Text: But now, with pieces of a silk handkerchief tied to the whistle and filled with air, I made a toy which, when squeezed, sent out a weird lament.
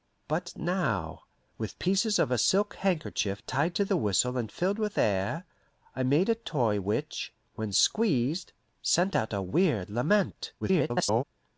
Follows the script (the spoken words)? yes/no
no